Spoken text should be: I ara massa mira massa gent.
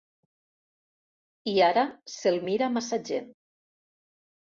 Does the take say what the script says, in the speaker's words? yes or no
no